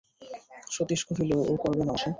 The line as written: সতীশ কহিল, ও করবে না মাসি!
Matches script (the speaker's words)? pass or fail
pass